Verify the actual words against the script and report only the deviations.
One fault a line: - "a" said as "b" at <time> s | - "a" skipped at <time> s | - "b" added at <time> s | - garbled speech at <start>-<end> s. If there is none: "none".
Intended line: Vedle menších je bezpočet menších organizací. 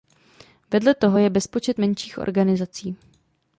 - "menších" said as "toho" at 0.9 s